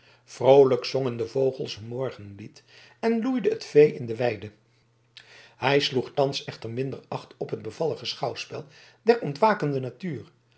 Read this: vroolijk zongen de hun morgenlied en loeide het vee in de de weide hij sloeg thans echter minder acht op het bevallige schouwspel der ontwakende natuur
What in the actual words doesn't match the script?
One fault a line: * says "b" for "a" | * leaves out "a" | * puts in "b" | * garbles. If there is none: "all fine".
* puts in "vogels"
* leaves out "de"